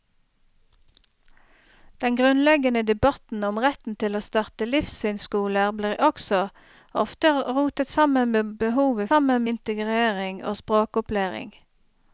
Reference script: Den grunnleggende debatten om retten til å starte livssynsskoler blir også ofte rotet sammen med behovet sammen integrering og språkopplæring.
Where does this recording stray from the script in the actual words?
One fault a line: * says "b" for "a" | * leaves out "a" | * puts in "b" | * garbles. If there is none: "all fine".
all fine